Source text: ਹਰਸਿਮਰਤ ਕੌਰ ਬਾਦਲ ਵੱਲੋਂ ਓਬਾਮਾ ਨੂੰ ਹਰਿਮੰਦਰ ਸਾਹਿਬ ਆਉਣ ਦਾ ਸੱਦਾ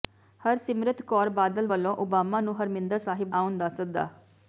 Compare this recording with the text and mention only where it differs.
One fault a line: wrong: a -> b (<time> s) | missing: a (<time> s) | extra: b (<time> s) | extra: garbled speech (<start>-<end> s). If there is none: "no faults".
no faults